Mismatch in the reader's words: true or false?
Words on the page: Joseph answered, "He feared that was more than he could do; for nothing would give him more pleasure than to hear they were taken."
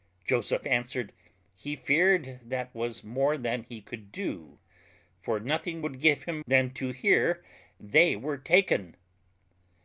true